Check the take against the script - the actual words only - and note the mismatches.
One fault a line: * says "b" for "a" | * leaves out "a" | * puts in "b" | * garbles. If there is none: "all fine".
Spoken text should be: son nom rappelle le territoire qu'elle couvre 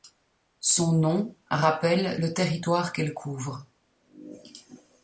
all fine